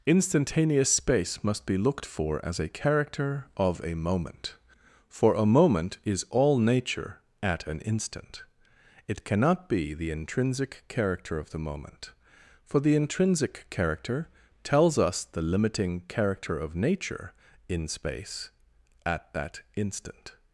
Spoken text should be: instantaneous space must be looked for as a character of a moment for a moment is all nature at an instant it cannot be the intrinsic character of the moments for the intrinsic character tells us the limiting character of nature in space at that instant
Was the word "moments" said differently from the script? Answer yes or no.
yes